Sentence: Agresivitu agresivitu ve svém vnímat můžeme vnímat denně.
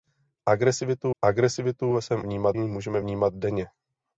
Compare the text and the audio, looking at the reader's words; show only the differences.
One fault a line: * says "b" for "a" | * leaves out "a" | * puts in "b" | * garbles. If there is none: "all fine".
all fine